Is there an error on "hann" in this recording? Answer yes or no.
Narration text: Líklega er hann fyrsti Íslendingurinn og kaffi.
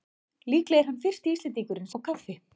no